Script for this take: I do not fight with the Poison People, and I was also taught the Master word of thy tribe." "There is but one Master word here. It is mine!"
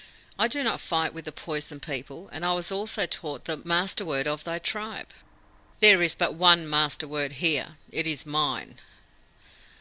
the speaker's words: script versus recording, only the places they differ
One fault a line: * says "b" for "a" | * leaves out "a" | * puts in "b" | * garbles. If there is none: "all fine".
all fine